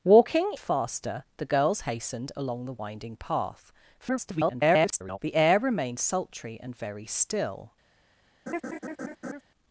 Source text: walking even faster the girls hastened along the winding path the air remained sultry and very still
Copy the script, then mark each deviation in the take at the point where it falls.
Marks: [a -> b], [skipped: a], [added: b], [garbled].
walking [skipped: even] faster the girls hastened along the winding path [garbled] the air remained sultry and very still